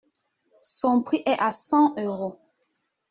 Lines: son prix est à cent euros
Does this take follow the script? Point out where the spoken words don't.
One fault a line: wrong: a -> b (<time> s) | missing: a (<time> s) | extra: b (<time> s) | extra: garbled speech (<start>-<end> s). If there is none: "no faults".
no faults